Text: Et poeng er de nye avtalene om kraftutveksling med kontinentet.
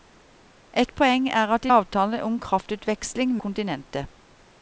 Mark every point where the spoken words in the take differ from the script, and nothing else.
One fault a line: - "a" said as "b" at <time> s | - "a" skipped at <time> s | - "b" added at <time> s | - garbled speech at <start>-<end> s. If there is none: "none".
- "nye" skipped at 1.7 s
- "med" skipped at 3.4 s